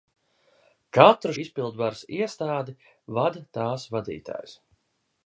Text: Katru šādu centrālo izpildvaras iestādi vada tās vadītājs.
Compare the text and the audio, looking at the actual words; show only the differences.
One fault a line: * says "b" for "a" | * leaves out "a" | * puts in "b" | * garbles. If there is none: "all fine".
* leaves out "šādu centrālo"